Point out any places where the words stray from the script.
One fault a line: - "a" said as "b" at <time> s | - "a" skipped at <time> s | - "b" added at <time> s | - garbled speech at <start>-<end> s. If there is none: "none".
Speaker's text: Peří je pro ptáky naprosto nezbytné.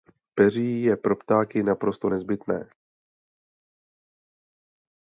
none